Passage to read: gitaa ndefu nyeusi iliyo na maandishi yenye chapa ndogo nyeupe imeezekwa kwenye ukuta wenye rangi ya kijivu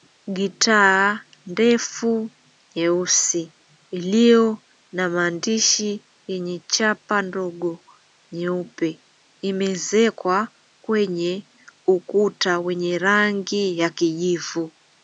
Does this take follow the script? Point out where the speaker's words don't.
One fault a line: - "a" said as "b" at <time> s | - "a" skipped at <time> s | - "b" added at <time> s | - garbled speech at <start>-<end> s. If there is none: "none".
none